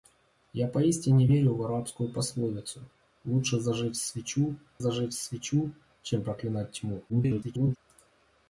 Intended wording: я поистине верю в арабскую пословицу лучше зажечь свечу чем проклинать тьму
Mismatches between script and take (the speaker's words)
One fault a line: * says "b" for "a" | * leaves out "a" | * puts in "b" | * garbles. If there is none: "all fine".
* puts in "зажечь свечу"
* garbles